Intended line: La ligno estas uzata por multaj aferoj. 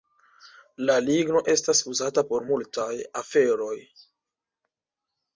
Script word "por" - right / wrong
right